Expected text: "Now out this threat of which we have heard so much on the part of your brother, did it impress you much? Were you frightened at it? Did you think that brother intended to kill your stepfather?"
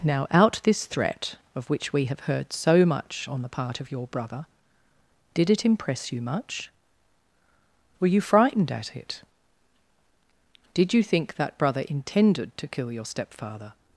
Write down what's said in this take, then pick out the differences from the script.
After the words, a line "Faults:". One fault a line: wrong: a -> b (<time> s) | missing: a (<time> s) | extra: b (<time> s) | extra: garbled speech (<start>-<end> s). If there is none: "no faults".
"Now out this threat of which we have heard so much on the part of your brother, did it impress you much? Were you frightened at it? Did you think that brother intended to kill your stepfather?"
Faults:
no faults